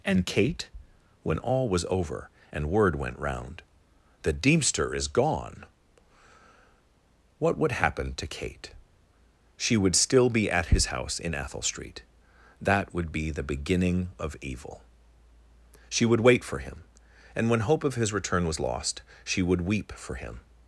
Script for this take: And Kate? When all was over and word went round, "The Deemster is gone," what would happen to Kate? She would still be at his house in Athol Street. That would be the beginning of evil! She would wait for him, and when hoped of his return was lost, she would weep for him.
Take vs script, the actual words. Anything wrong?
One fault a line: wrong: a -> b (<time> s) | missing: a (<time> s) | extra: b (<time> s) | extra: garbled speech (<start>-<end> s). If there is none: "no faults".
wrong: hoped -> hope (17.6 s)